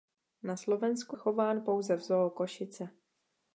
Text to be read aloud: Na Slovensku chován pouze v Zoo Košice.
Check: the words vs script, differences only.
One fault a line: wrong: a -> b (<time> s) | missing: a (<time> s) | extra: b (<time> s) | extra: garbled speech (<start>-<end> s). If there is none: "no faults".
no faults